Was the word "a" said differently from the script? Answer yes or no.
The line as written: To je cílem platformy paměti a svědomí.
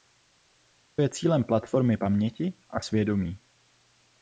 no